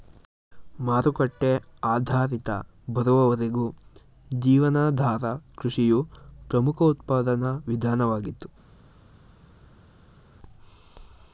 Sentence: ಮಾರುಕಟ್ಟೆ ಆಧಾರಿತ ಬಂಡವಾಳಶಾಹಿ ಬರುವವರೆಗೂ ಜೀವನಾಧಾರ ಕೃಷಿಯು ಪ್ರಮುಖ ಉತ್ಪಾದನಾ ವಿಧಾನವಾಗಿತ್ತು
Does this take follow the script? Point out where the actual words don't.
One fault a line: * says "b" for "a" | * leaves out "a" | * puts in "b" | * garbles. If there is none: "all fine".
* leaves out "ಬಂಡವಾಳಶಾಹಿ"